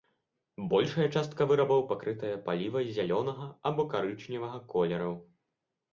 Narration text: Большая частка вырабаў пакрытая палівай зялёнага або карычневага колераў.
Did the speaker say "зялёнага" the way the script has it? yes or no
yes